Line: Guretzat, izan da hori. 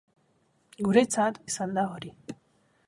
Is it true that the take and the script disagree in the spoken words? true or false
false